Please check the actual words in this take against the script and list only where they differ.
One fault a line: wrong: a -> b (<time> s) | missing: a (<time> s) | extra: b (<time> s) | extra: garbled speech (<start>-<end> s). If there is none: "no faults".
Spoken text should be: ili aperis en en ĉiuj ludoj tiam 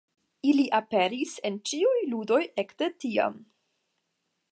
missing: en (1.6 s)
extra: ekde (2.6 s)